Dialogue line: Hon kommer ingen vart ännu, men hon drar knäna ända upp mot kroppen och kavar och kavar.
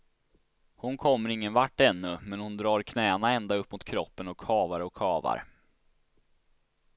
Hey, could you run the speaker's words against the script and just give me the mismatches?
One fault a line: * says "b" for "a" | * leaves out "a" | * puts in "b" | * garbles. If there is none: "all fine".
all fine